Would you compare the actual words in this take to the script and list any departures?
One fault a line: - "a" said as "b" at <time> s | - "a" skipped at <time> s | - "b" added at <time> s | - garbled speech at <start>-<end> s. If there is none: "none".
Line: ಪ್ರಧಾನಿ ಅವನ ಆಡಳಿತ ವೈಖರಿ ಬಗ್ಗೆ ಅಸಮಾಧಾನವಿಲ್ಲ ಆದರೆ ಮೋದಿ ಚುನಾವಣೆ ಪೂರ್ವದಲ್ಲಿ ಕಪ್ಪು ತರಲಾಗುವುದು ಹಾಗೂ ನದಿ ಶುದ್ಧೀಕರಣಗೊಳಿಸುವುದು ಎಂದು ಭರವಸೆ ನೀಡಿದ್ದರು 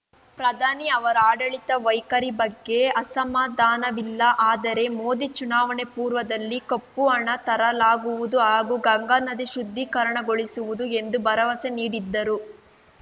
- "ಅವನ" said as "ಅವರ" at 0.9 s
- "ಹಣ" added at 7.1 s
- "ಗಂಗಾ" added at 8.9 s